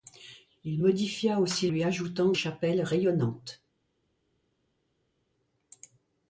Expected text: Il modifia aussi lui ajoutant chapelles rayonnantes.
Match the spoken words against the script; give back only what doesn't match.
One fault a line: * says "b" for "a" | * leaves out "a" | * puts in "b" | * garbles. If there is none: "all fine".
all fine